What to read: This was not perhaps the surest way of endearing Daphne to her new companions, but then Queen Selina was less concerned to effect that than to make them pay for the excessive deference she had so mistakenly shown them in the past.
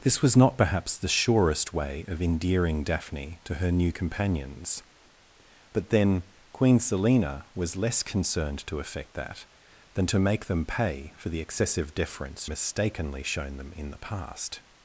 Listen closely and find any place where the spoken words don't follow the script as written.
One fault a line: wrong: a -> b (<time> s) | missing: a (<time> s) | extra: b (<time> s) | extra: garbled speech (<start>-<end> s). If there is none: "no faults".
missing: she had so (12.5 s)